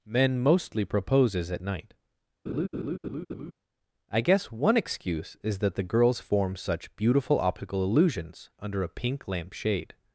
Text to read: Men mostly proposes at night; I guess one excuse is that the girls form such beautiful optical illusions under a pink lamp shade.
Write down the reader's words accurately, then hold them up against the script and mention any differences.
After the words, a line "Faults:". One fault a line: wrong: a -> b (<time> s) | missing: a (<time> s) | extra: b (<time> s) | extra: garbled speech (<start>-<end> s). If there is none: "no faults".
Men mostly proposes at night; I guess one excuse is that the girls form such beautiful optical illusions under a pink lamp shade.
Faults:
no faults